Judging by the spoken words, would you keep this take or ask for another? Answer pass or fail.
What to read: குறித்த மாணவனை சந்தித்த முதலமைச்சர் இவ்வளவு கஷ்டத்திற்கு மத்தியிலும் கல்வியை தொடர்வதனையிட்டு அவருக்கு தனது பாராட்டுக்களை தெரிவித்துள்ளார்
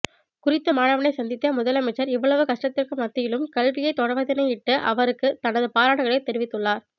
pass